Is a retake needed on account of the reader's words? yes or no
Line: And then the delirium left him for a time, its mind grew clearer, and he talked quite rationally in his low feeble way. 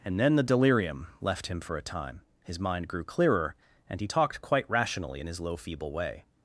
yes